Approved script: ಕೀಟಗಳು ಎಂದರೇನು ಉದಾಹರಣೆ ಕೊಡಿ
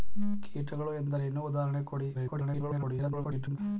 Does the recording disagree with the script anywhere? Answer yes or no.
yes